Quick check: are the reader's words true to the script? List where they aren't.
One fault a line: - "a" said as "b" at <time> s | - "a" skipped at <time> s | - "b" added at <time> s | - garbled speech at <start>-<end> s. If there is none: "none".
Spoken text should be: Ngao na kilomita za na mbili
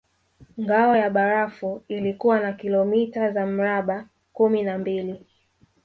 - "ya barafu ilikuwa" added at 1.0 s
- "mraba kumi" added at 3.5 s